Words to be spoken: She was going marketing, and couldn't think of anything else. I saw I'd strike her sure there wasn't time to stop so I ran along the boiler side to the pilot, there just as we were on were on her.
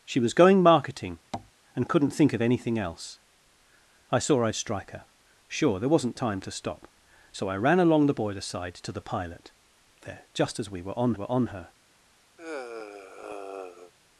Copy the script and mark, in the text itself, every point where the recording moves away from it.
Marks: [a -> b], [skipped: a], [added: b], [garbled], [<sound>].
She was going marketing, [tap] and couldn't think of anything else. I saw I'd strike her sure there wasn't time to stop so I ran along the boiler side to the pilot, there just as we were on were on her. [sigh]